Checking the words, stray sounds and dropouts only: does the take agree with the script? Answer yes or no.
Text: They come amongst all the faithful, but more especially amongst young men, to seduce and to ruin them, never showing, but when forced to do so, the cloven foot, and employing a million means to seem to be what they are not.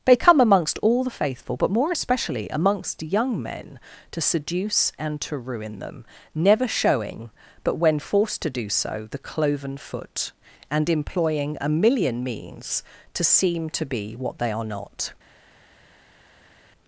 yes